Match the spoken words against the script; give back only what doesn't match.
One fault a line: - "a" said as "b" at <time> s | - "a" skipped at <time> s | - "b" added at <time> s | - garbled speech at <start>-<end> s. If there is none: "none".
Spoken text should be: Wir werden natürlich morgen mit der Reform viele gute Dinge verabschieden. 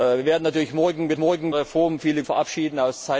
- "der" said as "morgen" at 1.2 s
- "gute Dinge" skipped at 2.2 s